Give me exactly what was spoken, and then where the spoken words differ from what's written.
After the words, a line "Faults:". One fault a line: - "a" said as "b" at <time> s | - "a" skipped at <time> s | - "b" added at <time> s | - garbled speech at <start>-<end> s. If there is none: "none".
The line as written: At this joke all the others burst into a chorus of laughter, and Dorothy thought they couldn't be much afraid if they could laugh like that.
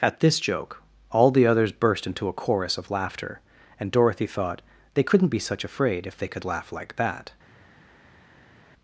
At this joke all the others burst into a chorus of laughter, and Dorothy thought they couldn't be such afraid if they could laugh like that.
Faults:
- "much" said as "such" at 5.4 s